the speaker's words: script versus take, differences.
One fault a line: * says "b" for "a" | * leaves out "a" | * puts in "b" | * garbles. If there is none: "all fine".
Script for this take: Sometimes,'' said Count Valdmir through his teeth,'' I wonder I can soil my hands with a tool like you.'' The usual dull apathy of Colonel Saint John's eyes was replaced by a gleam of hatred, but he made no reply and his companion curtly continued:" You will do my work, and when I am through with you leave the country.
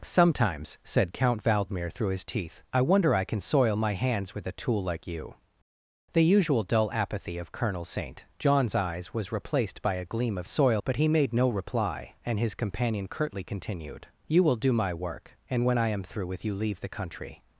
* says "soil" for "hatred"